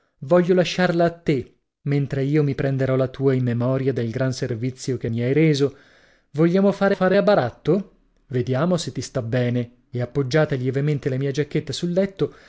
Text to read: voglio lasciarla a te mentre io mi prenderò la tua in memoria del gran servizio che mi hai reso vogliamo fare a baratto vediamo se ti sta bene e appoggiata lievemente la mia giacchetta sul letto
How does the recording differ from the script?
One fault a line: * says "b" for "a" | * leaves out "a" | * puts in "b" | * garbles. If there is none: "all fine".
* puts in "fare"